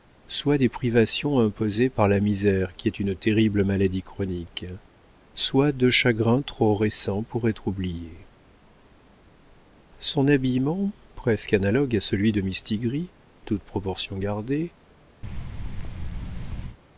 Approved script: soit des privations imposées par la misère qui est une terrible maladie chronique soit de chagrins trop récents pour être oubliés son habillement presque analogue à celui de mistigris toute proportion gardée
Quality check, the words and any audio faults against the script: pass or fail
fail